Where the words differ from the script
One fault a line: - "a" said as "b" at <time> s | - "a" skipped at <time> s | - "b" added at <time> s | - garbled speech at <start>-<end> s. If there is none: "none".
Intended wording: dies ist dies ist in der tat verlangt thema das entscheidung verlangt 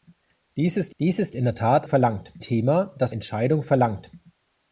none